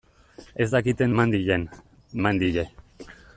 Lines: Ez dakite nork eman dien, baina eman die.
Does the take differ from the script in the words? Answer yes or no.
yes